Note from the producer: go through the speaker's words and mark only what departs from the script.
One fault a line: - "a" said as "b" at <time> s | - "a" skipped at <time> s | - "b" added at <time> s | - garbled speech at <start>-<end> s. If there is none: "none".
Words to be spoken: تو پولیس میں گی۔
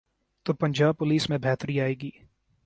- "پنجاب" added at 0.5 s
- "بہتری آئے" added at 1.4 s